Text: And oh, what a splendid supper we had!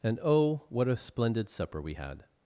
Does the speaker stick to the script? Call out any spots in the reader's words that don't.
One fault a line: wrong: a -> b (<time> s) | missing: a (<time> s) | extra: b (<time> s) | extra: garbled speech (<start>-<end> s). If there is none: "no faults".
no faults